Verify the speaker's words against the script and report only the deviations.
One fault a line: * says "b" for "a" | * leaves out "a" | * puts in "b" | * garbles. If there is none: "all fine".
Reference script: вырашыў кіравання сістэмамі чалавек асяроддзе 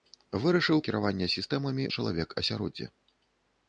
all fine